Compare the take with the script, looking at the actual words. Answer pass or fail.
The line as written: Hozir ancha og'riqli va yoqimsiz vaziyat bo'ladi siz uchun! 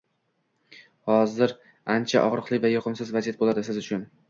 pass